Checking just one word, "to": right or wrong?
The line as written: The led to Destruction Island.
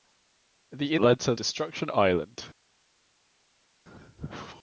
right